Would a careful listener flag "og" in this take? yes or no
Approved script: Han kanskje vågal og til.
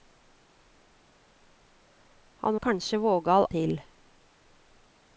no